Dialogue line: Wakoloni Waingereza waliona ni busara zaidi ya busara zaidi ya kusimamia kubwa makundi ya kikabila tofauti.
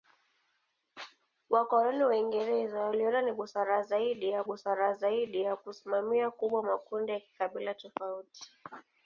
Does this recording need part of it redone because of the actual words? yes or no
no